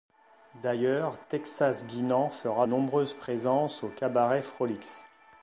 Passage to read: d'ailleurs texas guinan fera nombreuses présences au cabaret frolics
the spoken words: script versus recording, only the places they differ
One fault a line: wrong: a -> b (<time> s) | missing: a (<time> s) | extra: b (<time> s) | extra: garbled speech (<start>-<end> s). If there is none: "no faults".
no faults